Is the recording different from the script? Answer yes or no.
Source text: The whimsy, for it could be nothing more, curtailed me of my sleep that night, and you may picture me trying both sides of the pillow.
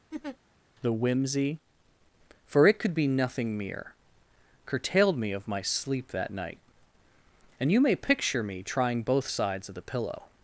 yes